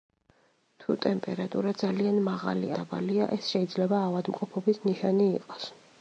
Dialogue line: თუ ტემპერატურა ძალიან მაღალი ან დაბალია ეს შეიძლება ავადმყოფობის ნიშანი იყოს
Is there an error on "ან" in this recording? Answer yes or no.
yes